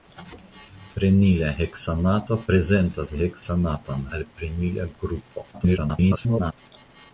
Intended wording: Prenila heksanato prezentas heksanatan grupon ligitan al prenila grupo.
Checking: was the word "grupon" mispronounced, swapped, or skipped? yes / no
yes